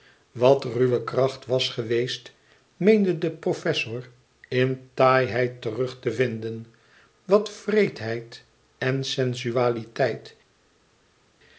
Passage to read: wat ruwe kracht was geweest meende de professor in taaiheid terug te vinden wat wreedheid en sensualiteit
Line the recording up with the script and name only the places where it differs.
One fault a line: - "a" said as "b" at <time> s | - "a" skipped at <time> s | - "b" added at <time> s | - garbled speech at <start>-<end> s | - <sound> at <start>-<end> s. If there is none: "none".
none